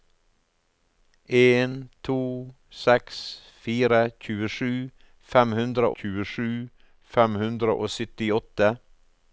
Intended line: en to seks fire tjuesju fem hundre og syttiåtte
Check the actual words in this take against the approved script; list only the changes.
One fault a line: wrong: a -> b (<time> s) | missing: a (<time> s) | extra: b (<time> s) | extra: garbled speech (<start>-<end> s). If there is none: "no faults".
extra: tjuesju fem hundre (6.0 s)